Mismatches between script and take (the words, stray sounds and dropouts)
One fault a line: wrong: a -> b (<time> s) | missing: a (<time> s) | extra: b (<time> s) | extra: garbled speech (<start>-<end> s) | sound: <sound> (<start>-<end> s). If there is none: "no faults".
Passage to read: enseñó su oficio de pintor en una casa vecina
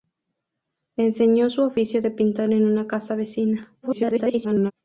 extra: garbled speech (3.8-4.7 s)